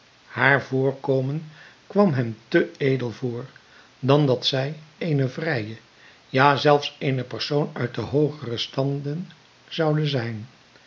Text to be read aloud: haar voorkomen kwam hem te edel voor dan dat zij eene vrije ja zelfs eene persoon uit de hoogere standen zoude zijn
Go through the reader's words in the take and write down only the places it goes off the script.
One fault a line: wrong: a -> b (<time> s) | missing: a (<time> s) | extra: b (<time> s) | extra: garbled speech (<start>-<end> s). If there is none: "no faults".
no faults